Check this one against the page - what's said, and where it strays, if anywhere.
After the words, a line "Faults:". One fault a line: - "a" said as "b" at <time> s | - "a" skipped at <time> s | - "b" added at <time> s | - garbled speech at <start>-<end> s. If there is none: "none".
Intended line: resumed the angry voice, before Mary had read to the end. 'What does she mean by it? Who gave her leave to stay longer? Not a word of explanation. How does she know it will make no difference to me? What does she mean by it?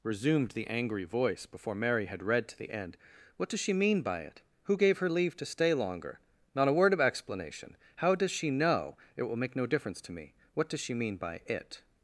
resumed the angry voice, before Mary had read to the end. 'What does she mean by it? Who gave her leave to stay longer? Not a word of explanation. How does she know it will make no difference to me? What does she mean by it?
Faults:
none